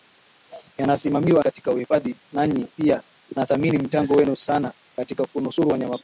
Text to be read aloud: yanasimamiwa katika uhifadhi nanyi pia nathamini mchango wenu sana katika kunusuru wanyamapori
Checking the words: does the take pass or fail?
pass